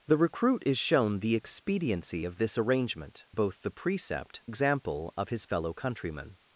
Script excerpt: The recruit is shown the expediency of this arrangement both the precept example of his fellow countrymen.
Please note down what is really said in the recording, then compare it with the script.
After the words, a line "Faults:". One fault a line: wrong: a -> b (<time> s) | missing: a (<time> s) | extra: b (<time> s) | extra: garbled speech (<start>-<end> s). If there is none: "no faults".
The recruit is shown the expediency of this arrangement both the precept example of his fellow countrymen.
Faults:
no faults